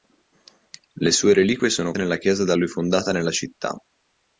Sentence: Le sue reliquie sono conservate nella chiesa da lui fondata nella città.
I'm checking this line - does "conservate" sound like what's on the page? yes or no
no